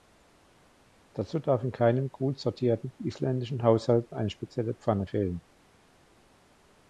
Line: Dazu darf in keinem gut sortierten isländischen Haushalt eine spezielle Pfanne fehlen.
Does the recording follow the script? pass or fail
pass